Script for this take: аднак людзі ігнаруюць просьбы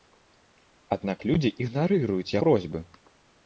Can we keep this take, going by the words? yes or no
yes